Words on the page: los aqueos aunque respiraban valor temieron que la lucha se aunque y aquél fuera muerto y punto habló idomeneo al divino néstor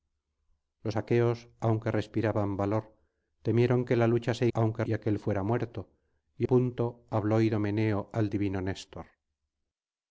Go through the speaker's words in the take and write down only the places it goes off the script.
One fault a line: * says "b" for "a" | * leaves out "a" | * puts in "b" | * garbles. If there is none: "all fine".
all fine